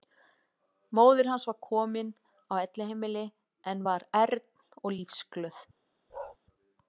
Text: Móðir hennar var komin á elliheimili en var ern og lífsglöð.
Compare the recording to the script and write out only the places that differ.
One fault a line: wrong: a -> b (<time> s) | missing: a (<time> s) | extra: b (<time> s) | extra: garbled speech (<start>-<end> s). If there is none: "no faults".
wrong: hennar -> hans (1.3 s)